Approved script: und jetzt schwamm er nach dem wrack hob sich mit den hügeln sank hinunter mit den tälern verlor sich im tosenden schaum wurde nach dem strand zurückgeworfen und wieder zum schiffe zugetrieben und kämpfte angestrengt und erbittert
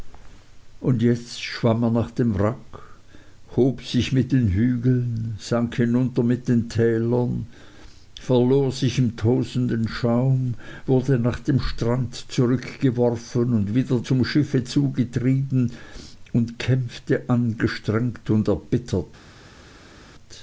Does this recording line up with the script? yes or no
yes